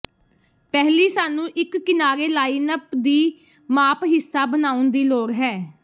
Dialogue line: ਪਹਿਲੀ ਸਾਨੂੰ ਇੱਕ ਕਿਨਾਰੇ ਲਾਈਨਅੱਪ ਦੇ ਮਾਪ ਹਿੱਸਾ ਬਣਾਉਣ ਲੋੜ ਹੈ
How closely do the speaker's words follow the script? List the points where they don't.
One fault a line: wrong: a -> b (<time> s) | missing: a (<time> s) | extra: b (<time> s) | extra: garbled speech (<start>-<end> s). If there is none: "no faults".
wrong: ਦੇ -> ਦੀ (3.0 s)
extra: ਦੀ (4.9 s)